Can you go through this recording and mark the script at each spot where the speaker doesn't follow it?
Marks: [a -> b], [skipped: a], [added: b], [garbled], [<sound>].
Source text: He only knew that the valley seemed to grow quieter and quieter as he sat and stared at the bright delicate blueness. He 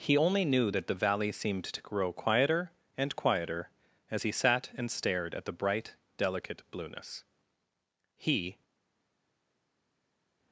He only knew that the valley seemed to grow quieter and quieter as he sat and stared at the bright delicate blueness. He